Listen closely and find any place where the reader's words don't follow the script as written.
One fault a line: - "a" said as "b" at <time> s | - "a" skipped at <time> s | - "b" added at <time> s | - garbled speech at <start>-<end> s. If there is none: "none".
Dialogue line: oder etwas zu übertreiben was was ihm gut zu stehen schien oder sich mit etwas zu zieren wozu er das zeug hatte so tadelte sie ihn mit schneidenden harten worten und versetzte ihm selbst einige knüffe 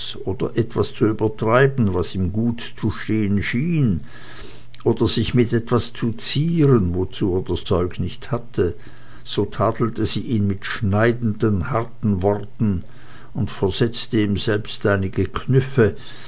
- "was" skipped at 2.1 s
- "nicht" added at 8.0 s